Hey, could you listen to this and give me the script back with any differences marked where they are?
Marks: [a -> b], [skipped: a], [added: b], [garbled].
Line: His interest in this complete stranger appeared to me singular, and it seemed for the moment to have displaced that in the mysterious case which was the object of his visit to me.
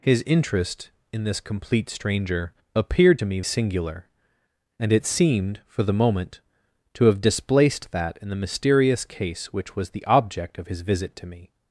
His interest in this complete stranger appeared to me singular, and it seemed for the moment to have displaced that in the mysterious case which was the object of his visit to me.